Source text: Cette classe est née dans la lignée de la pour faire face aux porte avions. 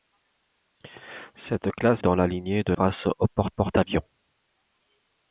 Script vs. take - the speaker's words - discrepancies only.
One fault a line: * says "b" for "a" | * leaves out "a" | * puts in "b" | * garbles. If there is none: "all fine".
* leaves out "est née"
* leaves out "la pour faire"
* puts in "porte"